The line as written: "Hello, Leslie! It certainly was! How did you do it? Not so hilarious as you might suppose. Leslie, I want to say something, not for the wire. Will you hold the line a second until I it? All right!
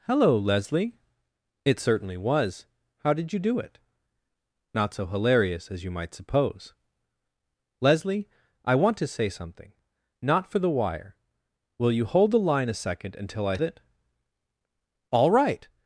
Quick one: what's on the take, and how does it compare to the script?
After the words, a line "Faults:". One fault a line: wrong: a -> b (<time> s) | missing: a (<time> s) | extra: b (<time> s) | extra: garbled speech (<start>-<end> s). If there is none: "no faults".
"Hello, Leslie! It certainly was! How did you do it? Not so hilarious as you might suppose. Leslie, I want to say something, not for the wire. Will you hold the line a second until I it? All right!
Faults:
no faults